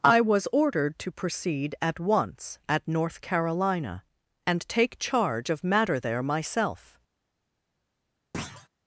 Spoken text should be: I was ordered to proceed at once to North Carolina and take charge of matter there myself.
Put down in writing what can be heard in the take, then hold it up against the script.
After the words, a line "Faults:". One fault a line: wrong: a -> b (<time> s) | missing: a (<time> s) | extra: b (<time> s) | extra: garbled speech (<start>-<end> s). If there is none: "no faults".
I was ordered to proceed at once at North Carolina and take charge of matter there myself.
Faults:
wrong: to -> at (2.7 s)